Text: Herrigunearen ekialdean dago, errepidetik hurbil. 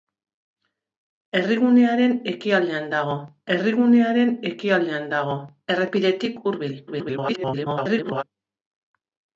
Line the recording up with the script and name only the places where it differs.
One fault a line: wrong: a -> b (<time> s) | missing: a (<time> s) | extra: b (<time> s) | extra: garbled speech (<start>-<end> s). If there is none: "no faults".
extra: herrigunearen ekialdean dago (3.6 s)
extra: garbled speech (6.9-8.2 s)